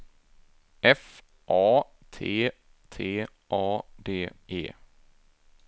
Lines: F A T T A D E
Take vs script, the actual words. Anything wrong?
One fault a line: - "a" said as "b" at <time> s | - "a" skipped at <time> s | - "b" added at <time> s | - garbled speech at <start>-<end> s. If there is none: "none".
none